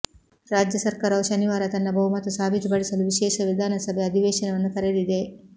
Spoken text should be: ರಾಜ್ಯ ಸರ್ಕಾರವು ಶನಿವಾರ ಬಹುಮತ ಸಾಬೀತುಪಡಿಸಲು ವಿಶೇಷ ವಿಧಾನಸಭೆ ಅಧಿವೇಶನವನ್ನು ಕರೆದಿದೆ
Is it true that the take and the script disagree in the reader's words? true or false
true